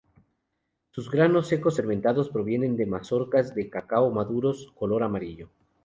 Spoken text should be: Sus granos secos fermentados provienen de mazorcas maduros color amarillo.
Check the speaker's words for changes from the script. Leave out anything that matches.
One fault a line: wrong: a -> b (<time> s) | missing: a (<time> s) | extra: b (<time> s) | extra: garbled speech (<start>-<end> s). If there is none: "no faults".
extra: de cacao (3.5 s)